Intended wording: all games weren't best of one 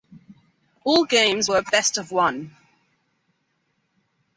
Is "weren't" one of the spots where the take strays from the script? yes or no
yes